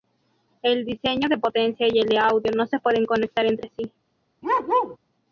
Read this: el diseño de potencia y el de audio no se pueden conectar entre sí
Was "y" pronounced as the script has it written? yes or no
yes